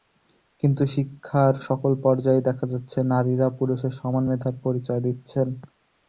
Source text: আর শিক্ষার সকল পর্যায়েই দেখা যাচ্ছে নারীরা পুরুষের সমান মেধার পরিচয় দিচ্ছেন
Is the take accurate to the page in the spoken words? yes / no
no